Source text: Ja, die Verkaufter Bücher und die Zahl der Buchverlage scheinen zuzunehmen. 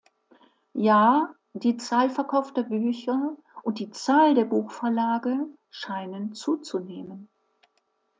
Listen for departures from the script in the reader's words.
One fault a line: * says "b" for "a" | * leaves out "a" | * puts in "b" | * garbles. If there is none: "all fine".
* puts in "Zahl"